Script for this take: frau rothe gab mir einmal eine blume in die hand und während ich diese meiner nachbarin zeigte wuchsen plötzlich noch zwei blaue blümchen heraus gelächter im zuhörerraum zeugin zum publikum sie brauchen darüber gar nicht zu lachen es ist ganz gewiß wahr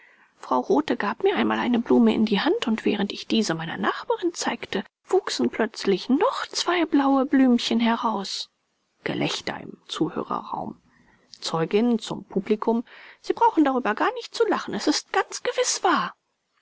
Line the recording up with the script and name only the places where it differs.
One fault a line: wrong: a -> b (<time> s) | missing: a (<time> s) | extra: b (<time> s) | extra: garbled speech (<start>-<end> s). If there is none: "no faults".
no faults